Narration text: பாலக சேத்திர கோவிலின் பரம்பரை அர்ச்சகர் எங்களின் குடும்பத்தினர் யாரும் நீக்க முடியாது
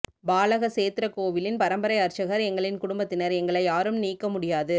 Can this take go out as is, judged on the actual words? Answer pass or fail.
fail